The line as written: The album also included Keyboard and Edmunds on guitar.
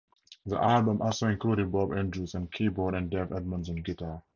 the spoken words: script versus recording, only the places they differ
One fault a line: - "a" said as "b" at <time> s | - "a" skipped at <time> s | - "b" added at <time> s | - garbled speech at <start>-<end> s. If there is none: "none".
- "Bob Andrews on" added at 1.7 s
- "Dave" added at 3.1 s